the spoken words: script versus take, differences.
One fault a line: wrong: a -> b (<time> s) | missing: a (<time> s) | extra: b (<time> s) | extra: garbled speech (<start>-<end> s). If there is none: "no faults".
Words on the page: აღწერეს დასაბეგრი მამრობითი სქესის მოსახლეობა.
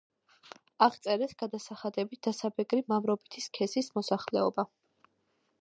extra: გადასახადებით (1.4 s)